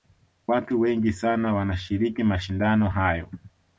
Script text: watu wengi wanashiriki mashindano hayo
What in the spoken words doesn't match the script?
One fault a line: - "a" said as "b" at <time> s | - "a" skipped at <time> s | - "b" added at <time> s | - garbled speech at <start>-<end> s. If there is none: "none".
- "sana" added at 1.1 s